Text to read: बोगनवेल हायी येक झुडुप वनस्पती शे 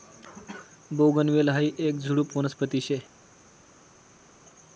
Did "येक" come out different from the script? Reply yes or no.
no